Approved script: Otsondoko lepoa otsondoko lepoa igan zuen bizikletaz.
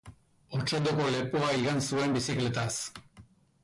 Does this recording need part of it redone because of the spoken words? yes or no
yes